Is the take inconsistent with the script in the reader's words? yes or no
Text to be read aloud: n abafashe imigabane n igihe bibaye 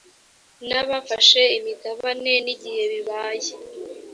no